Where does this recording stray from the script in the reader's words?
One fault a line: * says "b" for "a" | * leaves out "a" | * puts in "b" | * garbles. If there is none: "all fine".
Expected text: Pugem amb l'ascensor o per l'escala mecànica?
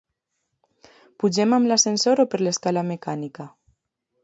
all fine